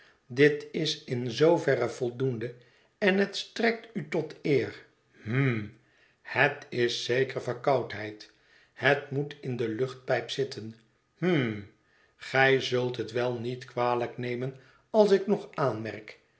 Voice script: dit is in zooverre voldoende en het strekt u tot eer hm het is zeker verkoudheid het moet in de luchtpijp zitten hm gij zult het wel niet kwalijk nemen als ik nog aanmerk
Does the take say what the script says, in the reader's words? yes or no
yes